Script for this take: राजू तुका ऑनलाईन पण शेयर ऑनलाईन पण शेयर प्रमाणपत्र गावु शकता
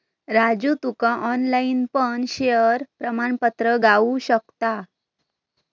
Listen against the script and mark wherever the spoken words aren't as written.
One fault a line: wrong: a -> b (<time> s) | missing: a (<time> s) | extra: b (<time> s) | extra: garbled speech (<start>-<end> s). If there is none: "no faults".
missing: ऑनलाईन पण शेयर (2.8 s)